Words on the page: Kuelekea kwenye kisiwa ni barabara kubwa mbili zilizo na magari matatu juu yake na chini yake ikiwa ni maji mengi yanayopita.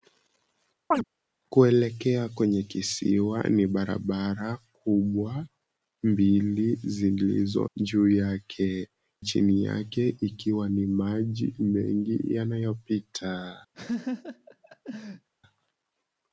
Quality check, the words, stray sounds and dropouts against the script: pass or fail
fail